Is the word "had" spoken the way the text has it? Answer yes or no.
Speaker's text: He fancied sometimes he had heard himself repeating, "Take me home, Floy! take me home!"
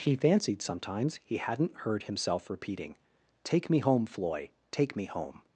no